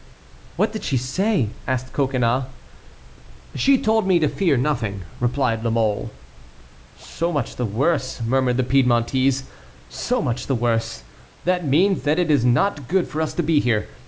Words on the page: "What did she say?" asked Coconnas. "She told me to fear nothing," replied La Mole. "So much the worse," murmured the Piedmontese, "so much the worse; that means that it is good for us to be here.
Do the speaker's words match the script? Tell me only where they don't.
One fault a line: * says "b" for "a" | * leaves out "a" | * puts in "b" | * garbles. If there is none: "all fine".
* puts in "not"